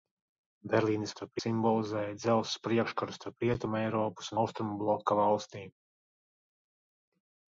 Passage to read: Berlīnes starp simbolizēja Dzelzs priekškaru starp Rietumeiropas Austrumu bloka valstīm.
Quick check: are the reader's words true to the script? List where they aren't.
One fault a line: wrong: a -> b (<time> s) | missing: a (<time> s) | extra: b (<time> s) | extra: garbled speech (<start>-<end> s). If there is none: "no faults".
no faults